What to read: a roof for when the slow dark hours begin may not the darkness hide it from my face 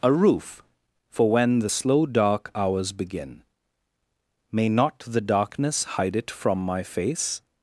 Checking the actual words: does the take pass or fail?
pass